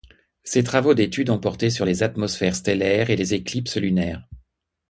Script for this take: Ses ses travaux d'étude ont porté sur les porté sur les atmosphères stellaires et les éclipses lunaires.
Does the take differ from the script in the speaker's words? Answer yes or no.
yes